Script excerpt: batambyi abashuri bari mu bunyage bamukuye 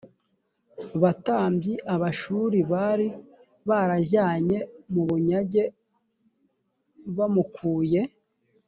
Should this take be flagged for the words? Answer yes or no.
yes